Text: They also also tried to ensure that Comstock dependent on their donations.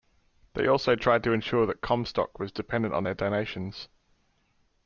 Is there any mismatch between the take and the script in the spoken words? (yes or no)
yes